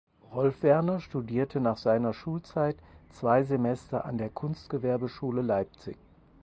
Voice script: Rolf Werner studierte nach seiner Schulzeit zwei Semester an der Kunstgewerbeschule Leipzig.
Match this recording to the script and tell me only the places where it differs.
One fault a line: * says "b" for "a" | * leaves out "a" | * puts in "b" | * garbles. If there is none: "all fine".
all fine